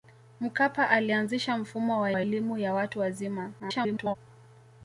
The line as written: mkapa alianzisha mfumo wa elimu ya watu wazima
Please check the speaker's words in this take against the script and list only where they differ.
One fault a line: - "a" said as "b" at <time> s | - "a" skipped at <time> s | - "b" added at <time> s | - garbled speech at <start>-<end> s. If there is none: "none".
- "wa" added at 2.1 s
- garbled speech at 3.6-4.2 s